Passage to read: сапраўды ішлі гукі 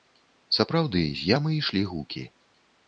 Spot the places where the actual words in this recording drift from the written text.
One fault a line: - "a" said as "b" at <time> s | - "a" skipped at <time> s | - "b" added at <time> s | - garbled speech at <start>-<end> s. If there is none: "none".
- "з ямы" added at 1.2 s